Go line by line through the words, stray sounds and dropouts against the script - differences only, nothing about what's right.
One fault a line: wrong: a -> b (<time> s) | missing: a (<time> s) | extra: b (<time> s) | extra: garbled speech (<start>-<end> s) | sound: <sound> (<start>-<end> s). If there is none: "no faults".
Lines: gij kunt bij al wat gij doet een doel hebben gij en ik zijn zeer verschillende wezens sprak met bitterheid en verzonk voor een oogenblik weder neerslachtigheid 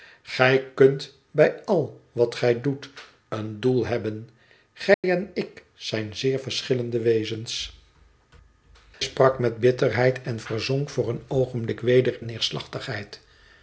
sound: dropout (4.9-5.0 s)